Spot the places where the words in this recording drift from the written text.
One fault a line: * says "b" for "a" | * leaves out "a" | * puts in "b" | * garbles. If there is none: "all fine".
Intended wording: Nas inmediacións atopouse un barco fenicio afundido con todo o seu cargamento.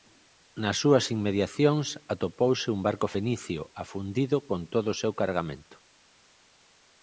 * puts in "súas"